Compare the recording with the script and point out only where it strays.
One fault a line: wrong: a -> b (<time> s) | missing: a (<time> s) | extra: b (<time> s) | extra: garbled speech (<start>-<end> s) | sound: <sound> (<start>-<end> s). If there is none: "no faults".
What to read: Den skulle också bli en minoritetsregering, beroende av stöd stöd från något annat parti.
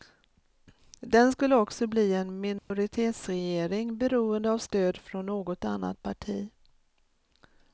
sound: dropout (2.6-2.7 s)
missing: stöd (5.0 s)